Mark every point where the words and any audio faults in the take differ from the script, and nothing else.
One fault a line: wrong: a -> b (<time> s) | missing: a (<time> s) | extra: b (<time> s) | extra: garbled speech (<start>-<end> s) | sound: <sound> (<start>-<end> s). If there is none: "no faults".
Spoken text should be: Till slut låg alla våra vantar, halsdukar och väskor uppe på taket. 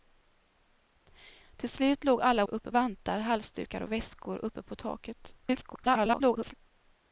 wrong: våra -> uppe (2.4 s)
extra: garbled speech (5.4-6.5 s)